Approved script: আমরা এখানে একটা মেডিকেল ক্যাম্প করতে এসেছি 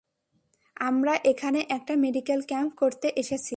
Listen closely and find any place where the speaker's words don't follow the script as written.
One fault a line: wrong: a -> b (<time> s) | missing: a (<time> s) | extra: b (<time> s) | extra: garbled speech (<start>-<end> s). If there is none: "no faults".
no faults